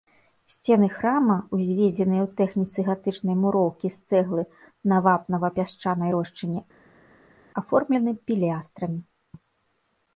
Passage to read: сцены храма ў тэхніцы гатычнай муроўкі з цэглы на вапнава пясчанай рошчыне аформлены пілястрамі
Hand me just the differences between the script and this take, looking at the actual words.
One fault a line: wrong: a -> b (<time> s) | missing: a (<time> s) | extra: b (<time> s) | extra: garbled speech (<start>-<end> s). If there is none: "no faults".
extra: узведзеныя (1.6 s)